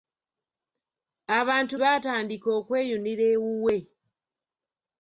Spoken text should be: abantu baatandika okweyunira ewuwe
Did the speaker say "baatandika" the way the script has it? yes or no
yes